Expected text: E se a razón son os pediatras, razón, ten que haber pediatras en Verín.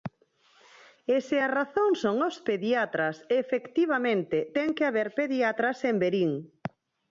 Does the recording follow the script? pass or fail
fail